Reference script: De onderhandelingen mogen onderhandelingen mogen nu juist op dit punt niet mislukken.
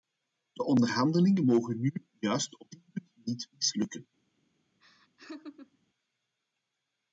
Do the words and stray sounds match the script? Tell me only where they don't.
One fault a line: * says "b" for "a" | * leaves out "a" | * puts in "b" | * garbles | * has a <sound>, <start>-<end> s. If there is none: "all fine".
* leaves out "onderhandelingen mogen"
* has a laugh, 4.8-5.8 s